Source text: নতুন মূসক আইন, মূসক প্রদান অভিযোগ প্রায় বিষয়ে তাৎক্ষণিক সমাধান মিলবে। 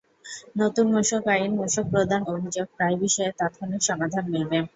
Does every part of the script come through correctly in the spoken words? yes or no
yes